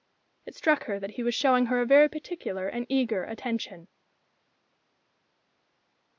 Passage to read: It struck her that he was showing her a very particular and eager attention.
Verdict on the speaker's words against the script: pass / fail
pass